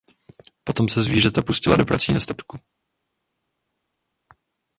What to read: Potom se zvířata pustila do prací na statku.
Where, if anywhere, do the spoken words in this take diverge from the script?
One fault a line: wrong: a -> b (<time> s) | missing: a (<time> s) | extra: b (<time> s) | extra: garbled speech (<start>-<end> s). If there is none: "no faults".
no faults